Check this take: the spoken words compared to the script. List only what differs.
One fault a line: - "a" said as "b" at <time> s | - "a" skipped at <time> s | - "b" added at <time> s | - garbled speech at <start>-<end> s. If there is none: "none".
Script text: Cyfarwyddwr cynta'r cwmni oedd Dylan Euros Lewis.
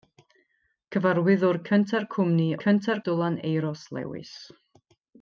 - "oedd" said as "cynta'r" at 2.6 s